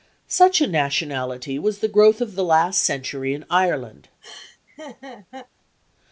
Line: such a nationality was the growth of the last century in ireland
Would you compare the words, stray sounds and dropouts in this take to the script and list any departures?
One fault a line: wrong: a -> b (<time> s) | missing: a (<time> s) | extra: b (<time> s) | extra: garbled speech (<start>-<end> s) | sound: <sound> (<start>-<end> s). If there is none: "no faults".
sound: laugh (4.2-5.5 s)